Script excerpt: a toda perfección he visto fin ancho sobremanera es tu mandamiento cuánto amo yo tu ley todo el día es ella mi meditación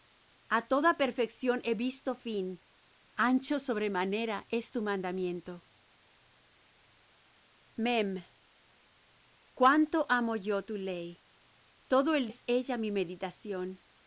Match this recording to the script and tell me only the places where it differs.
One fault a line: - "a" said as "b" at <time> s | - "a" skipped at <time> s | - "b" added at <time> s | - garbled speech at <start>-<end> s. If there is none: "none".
- "día" skipped at 12.3 s